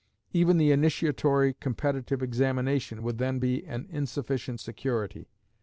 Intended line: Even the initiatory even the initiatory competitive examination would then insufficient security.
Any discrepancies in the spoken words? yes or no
yes